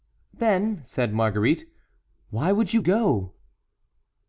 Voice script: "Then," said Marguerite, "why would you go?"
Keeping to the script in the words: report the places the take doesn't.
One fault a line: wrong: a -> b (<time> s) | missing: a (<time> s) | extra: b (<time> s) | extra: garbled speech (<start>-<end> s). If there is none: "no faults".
no faults